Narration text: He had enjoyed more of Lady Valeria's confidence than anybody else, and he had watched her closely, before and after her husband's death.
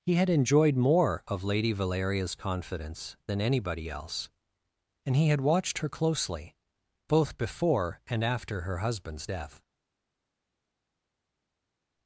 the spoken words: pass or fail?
fail